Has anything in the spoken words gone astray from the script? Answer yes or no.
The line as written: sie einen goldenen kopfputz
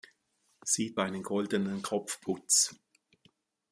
no